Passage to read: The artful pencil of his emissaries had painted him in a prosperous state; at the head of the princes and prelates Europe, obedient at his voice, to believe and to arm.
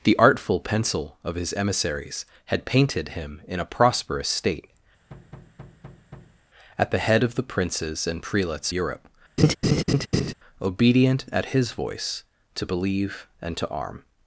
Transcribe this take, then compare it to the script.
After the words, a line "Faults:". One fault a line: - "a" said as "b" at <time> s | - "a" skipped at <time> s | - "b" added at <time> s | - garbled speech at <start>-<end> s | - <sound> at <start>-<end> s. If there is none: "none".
The artful pencil of his emissaries had painted him in a prosperous state; at the head of the princes and prelates Europe, obedient at his voice, to believe and to arm.
Faults:
- thud at 5.1-6.4 s
- laugh at 9.4-10.3 s